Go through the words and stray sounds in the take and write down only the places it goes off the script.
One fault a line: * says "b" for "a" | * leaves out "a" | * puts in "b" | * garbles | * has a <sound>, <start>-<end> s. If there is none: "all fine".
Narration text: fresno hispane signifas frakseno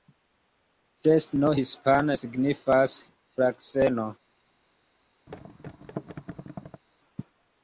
* has a thud, 5.3-6.8 s